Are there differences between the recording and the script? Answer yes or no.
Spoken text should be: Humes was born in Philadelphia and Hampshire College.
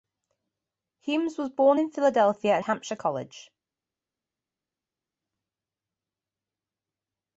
no